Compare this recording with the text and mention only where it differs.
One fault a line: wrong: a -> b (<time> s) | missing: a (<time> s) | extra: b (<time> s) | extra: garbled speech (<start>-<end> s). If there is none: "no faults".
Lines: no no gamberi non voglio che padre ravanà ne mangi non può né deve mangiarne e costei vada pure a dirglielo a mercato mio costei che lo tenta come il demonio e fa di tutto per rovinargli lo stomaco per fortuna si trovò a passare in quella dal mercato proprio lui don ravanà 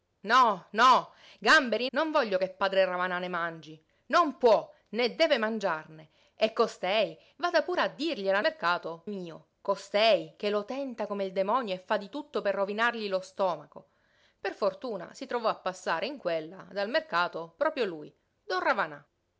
no faults